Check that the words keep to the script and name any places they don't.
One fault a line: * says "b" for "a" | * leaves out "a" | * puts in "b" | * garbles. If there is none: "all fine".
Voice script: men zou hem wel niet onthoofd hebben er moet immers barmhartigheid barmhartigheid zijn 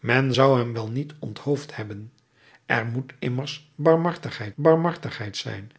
all fine